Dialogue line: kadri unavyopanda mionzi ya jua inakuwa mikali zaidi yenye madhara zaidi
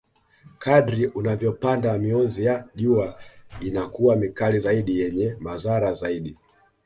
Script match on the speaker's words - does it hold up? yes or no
yes